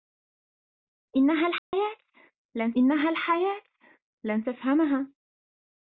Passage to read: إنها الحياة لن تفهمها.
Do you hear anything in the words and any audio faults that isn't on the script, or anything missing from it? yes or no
yes